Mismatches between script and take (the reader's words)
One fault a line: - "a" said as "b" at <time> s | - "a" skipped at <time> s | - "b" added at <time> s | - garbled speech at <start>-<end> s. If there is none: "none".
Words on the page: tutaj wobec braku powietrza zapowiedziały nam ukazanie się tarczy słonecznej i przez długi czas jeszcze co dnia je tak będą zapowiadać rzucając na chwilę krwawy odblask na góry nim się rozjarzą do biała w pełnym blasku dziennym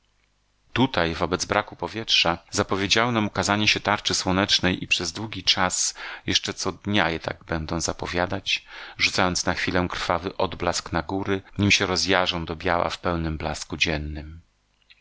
none